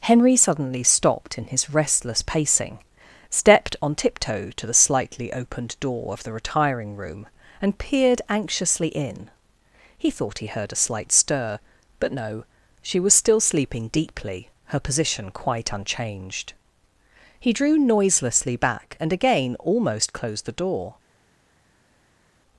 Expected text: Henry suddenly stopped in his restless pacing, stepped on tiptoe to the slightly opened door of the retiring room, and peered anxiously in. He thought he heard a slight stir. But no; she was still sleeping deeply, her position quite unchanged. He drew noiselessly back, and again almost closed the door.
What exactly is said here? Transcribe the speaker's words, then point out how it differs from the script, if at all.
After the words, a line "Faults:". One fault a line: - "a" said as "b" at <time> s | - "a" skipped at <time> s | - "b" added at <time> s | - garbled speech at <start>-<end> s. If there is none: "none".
Henry suddenly stopped in his restless pacing, stepped on tiptoe to the slightly opened door of the retiring room, and peered anxiously in. He thought he heard a slight stir. But no; she was still sleeping deeply, her position quite unchanged. He drew noiselessly back, and again almost closed the door.
Faults:
none